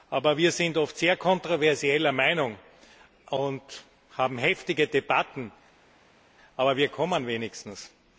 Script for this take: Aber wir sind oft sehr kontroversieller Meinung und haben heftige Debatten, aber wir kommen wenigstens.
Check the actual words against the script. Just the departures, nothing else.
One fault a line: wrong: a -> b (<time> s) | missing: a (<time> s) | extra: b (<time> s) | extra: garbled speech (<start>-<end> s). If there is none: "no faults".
no faults